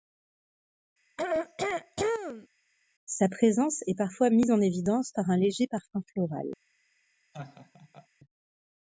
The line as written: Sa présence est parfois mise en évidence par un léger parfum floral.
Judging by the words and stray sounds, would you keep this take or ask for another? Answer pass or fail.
fail